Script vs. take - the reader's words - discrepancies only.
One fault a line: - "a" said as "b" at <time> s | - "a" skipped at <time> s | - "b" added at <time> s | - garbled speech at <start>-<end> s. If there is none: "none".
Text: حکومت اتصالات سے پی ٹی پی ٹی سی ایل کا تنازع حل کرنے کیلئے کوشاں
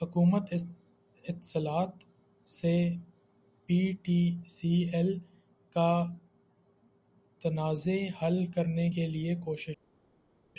- "پی ٹی" skipped at 4.3 s